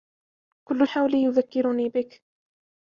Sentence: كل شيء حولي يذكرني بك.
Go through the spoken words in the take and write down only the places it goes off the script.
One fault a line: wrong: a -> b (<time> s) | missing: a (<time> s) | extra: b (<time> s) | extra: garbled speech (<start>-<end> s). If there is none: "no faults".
missing: شيء (0.9 s)